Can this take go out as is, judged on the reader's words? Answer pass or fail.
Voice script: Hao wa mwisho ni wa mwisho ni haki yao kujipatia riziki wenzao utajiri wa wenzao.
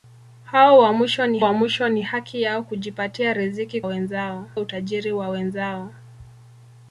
pass